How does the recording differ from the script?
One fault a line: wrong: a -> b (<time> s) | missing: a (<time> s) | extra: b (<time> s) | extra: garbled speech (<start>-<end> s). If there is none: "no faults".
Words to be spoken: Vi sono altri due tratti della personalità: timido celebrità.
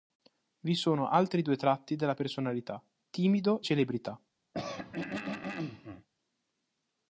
no faults